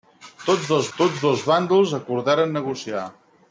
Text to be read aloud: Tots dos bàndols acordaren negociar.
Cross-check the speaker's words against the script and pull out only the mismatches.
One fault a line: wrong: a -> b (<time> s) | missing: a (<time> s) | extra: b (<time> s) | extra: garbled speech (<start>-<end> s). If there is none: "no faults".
extra: tots dos (1.0 s)